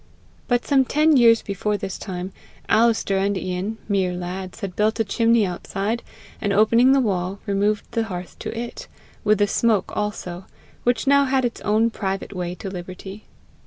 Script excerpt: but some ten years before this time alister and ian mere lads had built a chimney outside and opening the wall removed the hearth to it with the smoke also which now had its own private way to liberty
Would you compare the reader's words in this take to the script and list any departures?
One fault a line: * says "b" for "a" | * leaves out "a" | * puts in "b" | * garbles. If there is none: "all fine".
all fine